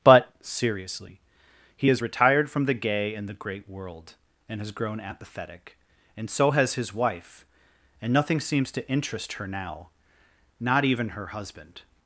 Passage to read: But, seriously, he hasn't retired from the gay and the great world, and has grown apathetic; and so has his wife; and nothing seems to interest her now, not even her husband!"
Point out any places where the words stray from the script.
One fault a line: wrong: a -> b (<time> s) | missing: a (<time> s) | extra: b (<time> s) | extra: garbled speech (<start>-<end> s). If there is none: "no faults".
wrong: hasn't -> has (1.9 s)